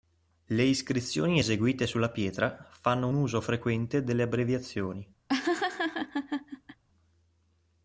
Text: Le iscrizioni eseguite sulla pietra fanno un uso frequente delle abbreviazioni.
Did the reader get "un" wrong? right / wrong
wrong